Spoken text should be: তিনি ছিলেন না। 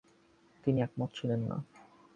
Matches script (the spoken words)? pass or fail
fail